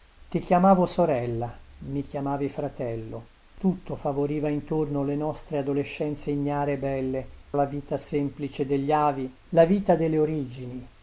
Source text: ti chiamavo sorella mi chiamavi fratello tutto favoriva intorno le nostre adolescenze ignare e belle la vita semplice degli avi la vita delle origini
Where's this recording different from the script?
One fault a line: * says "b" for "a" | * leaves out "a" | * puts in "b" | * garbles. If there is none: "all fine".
all fine